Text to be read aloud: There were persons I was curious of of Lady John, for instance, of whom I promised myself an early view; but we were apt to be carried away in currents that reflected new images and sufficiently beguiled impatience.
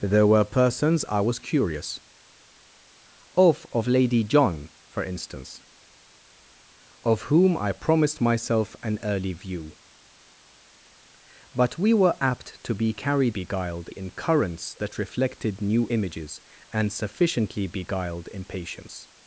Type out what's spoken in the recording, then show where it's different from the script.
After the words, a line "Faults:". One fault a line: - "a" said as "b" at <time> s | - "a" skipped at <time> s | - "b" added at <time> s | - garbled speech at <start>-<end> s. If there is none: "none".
There were persons I was curious of of Lady John, for instance, of whom I promised myself an early view; but we were apt to be carried beguiled in currents that reflected new images and sufficiently beguiled impatience.
Faults:
- "away" said as "beguiled" at 13.3 s